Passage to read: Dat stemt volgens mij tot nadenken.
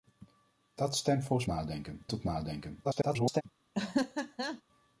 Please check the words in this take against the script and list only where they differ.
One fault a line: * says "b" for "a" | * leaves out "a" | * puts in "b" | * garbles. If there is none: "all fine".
* says "nadenken" for "mij"
* garbles